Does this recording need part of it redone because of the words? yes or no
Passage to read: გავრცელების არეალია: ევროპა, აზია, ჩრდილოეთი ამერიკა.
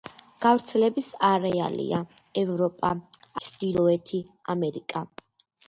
yes